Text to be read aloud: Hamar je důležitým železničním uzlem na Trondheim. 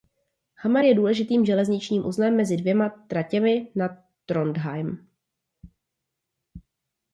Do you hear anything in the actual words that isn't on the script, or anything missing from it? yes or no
yes